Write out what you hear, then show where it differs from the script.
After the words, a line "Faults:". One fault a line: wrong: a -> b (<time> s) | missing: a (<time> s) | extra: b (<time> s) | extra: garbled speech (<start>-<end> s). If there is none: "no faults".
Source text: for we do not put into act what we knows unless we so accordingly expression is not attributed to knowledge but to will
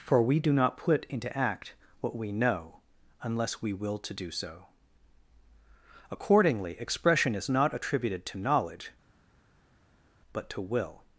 for we do not put into act what we know unless we will to do so accordingly expression is not attributed to knowledge but to will
Faults:
wrong: knows -> know (2.3 s)
extra: will to do (3.7 s)